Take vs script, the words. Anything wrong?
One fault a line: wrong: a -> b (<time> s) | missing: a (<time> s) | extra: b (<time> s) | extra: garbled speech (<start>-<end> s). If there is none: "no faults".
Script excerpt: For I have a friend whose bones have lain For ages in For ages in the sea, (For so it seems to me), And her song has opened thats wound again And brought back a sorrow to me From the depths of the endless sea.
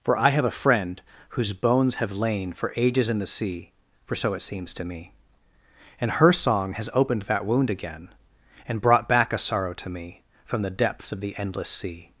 missing: For ages in (3.2 s)
wrong: thats -> that (7.2 s)